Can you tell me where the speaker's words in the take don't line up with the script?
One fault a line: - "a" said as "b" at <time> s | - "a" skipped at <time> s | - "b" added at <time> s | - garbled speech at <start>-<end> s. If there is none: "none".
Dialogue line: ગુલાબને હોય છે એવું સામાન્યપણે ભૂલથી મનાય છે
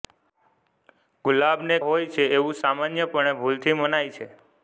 none